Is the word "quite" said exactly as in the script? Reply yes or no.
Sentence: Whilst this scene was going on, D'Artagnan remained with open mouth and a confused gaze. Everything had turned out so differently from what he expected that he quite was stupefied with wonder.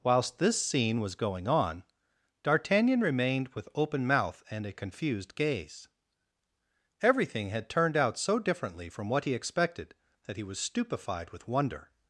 no